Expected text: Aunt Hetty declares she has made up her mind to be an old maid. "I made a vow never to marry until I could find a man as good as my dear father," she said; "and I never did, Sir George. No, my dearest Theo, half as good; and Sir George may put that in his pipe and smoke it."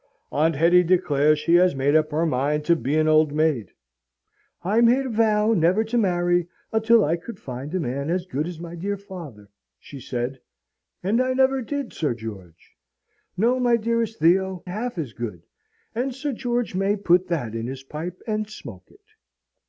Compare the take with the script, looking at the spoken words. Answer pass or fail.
pass